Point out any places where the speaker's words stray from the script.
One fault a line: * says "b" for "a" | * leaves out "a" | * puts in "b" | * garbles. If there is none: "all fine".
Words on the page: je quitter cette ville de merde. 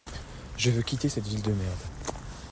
* puts in "veux"